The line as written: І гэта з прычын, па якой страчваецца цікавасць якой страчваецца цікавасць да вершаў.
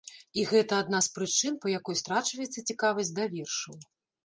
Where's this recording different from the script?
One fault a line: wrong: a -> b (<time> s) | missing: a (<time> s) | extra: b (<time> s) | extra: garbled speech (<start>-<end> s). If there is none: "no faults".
extra: адна (0.8 s)
missing: якой страчваецца цікавасць (3.1 s)